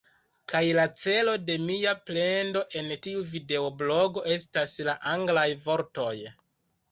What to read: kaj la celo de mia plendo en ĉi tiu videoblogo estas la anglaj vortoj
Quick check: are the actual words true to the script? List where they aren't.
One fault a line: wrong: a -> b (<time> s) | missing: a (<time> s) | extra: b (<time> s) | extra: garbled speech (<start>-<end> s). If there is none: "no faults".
missing: ĉi (2.9 s)